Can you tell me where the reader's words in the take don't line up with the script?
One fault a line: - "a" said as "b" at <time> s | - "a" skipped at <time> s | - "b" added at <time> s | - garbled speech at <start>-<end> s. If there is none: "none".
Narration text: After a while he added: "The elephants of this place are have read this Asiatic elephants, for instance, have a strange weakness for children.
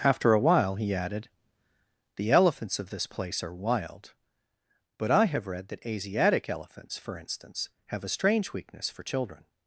- "wild but I" added at 3.6 s
- "this" said as "that" at 5.7 s